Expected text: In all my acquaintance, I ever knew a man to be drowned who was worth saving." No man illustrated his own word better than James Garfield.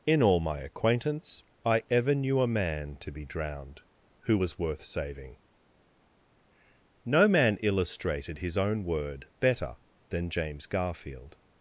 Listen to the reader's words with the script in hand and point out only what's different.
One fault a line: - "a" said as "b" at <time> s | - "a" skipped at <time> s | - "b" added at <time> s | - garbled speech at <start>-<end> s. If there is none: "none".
none